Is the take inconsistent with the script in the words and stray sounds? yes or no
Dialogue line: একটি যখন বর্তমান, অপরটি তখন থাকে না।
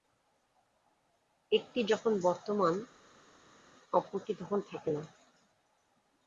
no